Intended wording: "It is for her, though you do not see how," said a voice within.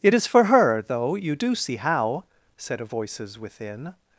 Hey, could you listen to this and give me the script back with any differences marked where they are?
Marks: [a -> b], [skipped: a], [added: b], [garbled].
"It is for her, though you do [skipped: not] see how," said a [voice -> voices] within.